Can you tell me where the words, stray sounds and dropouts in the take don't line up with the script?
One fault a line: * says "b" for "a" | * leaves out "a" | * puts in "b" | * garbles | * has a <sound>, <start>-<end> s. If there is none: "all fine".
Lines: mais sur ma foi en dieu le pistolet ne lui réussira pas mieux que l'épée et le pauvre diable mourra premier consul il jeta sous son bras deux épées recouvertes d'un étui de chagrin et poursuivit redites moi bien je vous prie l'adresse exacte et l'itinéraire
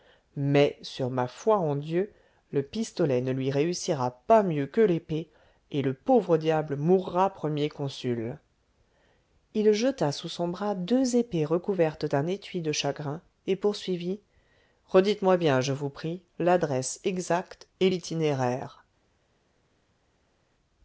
all fine